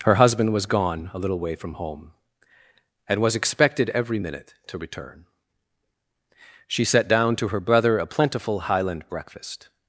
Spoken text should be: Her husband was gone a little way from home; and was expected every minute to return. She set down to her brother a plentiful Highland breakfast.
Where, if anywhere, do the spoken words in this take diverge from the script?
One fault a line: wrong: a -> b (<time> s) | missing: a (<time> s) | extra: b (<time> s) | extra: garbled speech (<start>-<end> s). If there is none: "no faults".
no faults